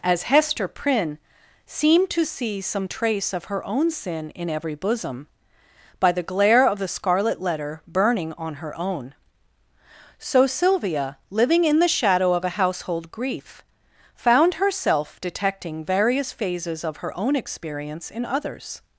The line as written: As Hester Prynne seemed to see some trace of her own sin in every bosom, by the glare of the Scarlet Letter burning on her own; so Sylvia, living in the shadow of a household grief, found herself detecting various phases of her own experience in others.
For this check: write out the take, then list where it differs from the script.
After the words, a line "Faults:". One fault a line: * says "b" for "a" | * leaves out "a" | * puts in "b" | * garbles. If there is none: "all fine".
As Hester Prynne seemed to see some trace of her own sin in every bosom, by the glare of the Scarlet Letter burning on her own; so Sylvia, living in the shadow of a household grief, found herself detecting various phases of her own experience in others.
Faults:
all fine